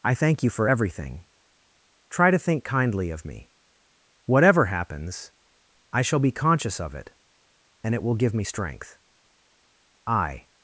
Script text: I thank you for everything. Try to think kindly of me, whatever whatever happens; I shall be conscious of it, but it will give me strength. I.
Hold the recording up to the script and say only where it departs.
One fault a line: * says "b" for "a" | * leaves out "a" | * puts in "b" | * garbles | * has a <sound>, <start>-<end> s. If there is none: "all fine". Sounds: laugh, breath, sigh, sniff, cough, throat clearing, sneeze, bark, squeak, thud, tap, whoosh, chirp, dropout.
* leaves out "whatever"
* says "and" for "but"